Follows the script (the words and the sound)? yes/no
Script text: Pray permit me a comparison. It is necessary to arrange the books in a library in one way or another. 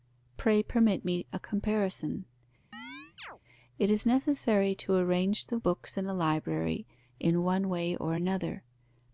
no